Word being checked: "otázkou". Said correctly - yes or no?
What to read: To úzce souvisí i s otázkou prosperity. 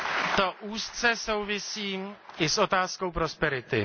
yes